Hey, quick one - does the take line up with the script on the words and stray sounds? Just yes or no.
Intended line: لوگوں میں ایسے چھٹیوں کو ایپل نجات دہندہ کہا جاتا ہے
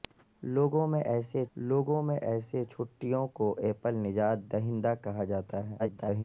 no